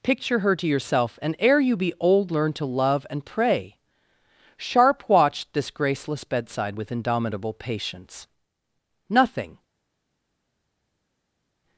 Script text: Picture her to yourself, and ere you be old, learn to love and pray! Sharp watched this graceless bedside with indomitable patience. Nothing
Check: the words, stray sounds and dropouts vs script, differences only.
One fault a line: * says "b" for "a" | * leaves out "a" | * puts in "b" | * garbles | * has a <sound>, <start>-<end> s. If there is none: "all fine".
all fine